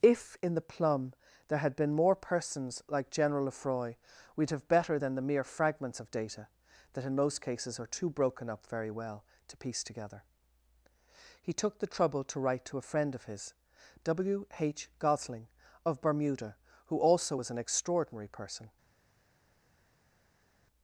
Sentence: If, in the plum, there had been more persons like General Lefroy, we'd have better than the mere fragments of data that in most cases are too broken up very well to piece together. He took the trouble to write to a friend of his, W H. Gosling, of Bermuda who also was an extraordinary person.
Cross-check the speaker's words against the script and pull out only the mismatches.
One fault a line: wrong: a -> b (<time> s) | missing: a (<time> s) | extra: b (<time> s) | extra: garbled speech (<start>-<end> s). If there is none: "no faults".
no faults